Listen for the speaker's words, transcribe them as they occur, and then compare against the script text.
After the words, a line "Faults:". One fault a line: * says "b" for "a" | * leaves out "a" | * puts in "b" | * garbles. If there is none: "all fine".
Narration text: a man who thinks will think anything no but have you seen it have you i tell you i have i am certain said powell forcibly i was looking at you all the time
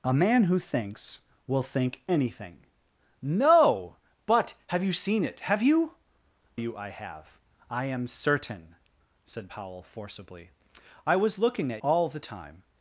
a man who thinks will think anything no but have you seen it have you you i have i am certain said powell forcibly i was looking at all the time
Faults:
* leaves out "i tell"
* leaves out "you"